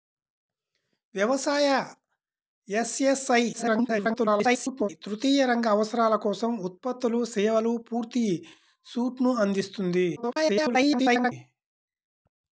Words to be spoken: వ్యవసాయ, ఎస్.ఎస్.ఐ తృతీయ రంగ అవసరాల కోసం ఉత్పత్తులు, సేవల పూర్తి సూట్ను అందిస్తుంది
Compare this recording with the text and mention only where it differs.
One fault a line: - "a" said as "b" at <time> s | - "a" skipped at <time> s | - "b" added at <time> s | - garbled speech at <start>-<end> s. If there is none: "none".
- garbled speech at 3.5-4.9 s
- garbled speech at 10.2-11.3 s